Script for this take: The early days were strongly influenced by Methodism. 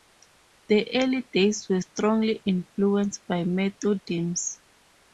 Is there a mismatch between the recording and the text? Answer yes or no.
no